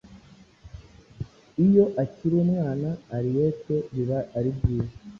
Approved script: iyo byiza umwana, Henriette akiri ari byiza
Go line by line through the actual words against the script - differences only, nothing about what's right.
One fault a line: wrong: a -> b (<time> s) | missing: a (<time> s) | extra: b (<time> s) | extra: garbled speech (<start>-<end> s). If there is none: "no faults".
wrong: byiza -> akiri (2.0 s)
wrong: akiri -> biba (3.9 s)